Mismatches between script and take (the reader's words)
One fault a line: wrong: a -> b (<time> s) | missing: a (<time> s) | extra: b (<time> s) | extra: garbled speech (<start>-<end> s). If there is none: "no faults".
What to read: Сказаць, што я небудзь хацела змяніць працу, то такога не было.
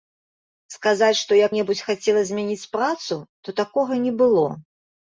no faults